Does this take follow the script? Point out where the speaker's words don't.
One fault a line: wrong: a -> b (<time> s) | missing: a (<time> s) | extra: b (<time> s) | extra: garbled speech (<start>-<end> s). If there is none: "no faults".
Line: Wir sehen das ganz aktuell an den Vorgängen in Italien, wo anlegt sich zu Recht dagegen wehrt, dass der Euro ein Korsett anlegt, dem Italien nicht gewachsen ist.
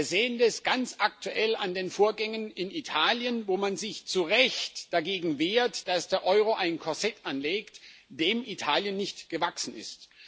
wrong: anlegt -> man (3.5 s)